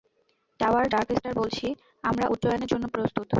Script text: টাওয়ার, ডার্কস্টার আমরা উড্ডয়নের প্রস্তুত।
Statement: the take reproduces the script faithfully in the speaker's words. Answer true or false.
false